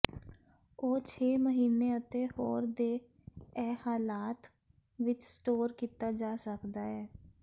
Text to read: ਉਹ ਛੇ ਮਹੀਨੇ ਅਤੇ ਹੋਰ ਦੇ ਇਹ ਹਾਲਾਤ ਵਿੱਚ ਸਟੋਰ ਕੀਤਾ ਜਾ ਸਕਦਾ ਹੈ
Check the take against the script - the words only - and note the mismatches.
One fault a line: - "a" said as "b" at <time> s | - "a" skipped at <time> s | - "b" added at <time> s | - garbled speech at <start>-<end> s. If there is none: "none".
none